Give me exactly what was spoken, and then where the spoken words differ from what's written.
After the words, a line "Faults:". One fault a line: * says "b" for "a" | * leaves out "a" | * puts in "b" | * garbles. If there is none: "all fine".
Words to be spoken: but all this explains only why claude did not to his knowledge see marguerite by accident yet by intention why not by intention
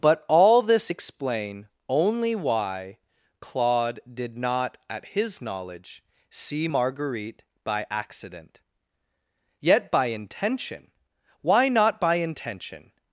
but all this explain only why claude did not at his knowledge see marguerite by accident yet by intention why not by intention
Faults:
* says "explain" for "explains"
* says "at" for "to"